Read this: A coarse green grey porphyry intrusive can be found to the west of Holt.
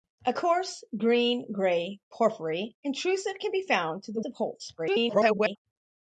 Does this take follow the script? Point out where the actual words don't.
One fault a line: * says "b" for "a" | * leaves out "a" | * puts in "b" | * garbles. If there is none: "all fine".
* leaves out "west"
* garbles